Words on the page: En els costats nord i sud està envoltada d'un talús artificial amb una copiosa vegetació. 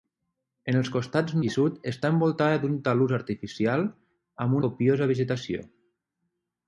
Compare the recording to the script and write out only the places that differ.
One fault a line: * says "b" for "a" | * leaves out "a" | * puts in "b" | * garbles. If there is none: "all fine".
* leaves out "nord"
* leaves out "una"